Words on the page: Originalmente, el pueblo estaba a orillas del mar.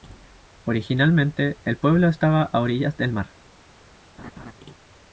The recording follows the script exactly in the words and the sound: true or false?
false